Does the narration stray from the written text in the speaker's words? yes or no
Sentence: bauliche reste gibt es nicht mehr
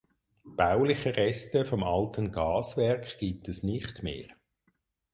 yes